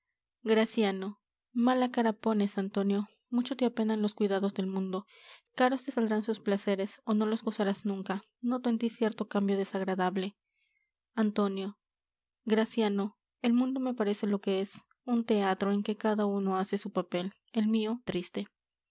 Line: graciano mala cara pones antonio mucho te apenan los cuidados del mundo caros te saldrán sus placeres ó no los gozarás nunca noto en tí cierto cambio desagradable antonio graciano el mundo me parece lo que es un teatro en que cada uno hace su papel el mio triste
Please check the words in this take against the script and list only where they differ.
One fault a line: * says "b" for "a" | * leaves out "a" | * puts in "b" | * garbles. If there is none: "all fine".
all fine